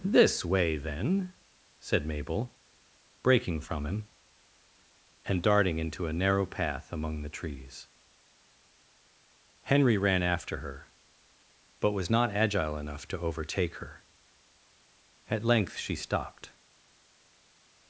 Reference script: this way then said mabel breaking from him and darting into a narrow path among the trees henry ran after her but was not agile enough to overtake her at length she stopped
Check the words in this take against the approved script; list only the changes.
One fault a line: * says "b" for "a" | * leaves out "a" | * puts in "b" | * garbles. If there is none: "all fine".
all fine